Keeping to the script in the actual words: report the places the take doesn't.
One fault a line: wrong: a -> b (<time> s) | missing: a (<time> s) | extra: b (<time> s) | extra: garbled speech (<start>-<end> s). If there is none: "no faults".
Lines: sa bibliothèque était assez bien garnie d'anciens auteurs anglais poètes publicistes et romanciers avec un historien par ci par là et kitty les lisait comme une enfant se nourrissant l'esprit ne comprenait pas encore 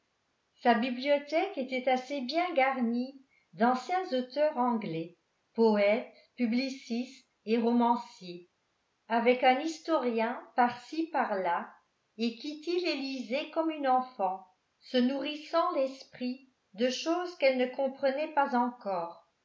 extra: de choses qu'elle (16.7 s)